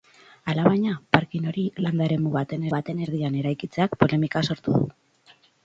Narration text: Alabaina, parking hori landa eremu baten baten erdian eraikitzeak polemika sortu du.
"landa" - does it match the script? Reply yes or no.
yes